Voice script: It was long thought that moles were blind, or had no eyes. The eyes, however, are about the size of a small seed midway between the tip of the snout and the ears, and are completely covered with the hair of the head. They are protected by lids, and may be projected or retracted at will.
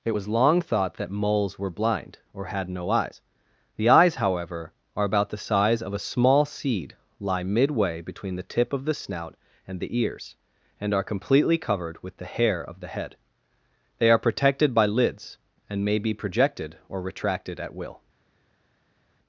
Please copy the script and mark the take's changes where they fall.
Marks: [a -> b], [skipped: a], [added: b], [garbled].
It was long thought that moles were blind, or had no eyes. The eyes, however, are about the size of a small seed [added: lie] midway between the tip of the snout and the ears, and are completely covered with the hair of the head. They are protected by lids, and may be projected or retracted at will.